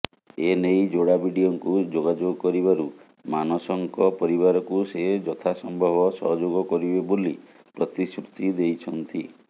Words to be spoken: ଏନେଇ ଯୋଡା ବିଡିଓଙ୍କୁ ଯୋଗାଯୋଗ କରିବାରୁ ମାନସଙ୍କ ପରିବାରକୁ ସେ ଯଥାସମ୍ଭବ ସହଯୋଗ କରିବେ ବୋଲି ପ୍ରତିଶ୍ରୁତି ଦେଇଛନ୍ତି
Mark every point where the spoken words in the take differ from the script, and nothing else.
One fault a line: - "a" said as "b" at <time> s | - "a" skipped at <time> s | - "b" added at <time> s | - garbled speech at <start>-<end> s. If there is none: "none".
none